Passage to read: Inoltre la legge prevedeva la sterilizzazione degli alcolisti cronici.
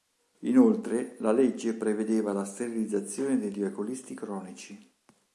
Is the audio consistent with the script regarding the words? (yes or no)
yes